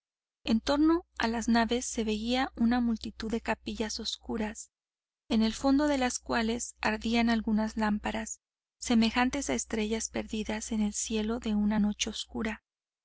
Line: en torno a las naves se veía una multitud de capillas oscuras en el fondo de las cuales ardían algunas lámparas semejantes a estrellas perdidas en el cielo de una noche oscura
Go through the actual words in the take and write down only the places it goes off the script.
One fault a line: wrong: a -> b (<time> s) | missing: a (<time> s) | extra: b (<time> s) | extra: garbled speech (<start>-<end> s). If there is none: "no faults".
no faults